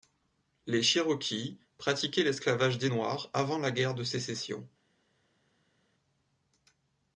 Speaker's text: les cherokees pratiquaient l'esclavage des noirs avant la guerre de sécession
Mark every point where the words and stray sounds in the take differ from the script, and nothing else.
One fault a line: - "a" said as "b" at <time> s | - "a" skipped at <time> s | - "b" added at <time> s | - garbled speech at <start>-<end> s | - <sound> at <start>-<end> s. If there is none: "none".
none